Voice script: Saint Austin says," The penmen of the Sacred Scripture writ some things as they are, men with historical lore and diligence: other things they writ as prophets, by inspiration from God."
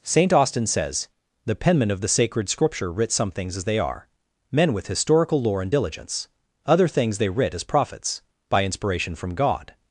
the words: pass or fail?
pass